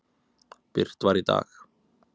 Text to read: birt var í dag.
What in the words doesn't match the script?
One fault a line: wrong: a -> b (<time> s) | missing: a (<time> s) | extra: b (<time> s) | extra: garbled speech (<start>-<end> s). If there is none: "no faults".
no faults